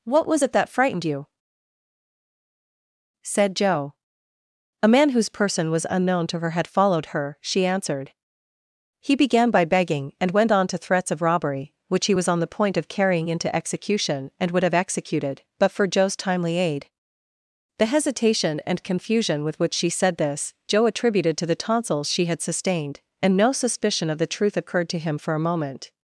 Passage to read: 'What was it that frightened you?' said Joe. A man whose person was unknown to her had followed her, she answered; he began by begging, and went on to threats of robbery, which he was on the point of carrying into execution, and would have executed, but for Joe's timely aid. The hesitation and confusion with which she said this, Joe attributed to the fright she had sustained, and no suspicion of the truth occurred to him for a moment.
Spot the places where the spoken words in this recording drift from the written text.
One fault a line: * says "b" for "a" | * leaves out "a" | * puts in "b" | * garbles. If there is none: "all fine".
* says "tonsils" for "fright"